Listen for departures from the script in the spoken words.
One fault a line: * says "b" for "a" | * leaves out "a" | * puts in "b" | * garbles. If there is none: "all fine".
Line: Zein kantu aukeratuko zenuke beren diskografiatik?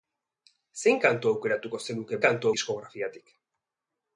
* says "kantu" for "beren"